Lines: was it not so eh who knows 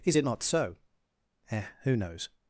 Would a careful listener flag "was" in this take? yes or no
yes